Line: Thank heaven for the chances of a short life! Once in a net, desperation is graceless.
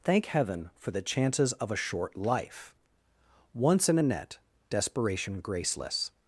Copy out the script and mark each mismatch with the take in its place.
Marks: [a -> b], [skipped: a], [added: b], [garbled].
Thank heaven for the chances of a short life! Once in a net, desperation [skipped: is] graceless.